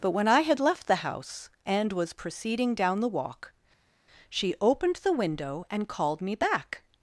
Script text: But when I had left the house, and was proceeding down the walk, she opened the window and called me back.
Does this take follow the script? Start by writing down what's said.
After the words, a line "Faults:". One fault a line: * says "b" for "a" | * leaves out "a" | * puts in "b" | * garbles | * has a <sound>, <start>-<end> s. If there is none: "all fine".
But when I had left the house, and was proceeding down the walk, she opened the window and called me back.
Faults:
all fine